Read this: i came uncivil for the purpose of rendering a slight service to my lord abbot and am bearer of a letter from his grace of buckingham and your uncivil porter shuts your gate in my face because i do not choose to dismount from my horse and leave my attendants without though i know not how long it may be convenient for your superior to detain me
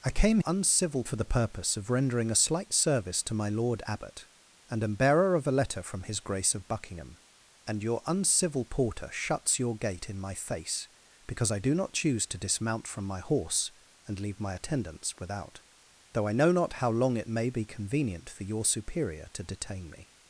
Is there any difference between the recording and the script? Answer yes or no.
no